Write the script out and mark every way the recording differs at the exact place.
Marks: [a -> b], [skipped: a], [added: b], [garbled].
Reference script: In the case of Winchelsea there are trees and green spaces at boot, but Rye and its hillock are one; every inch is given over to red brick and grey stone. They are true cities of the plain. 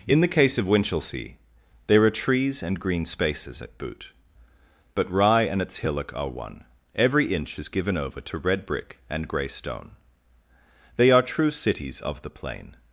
In the case of Winchelsea there are trees and green spaces at boot, but Rye and its hillock are one; every inch is given over to red brick and grey stone. They are true cities of the plain.